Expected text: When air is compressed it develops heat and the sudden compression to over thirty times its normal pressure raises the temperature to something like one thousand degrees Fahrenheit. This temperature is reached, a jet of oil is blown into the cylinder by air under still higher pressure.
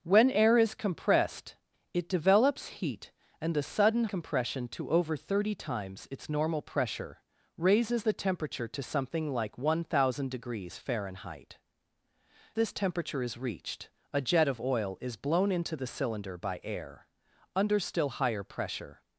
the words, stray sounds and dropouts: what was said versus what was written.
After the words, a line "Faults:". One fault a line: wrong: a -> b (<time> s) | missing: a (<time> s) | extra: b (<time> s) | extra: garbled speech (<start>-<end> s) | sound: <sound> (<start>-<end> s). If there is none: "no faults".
When air is compressed it develops heat and the sudden compression to over thirty times its normal pressure raises the temperature to something like one thousand degrees Fahrenheit. This temperature is reached, a jet of oil is blown into the cylinder by air under still higher pressure.
Faults:
no faults